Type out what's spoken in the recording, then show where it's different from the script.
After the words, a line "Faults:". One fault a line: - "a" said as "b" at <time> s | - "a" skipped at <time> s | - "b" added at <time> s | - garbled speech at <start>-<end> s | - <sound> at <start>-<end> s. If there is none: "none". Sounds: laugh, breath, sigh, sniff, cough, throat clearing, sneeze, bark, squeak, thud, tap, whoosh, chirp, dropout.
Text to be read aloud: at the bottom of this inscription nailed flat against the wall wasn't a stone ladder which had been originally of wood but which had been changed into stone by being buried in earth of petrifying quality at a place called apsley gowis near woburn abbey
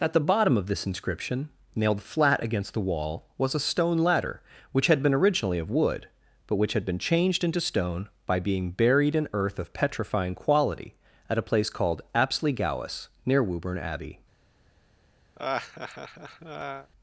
at the bottom of this inscription nailed flat against the wall was a stone ladder which had been originally of wood but which had been changed into stone by being buried in earth of petrifying quality at a place called apsley gowis near woburn abbey
Faults:
- "wasn't" said as "was" at 3.4 s
- laugh at 15.3-16.9 s